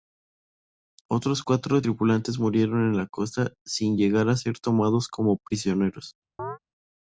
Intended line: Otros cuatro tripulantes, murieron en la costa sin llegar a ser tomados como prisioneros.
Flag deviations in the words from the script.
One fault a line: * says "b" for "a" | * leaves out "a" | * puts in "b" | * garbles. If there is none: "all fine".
all fine